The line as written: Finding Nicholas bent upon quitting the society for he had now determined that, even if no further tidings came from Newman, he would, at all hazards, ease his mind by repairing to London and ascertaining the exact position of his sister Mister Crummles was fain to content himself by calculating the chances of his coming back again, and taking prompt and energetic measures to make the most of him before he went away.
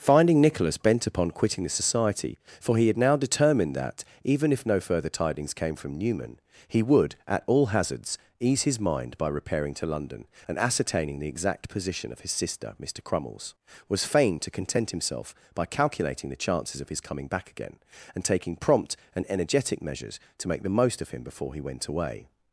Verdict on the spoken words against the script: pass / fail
pass